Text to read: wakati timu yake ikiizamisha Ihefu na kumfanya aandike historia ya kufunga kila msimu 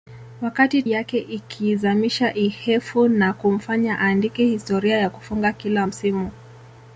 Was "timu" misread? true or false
true